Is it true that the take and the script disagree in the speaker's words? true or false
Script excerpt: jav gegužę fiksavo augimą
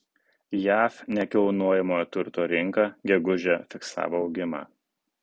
true